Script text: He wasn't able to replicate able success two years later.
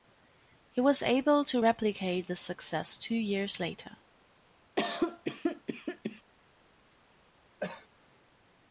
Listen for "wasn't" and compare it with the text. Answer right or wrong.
wrong